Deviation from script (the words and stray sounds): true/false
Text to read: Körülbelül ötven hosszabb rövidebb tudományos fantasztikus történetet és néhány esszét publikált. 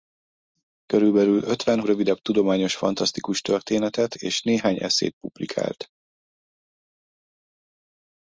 true